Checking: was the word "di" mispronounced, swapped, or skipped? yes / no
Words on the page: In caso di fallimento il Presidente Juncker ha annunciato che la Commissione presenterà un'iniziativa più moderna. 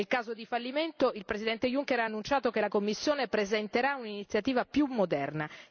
no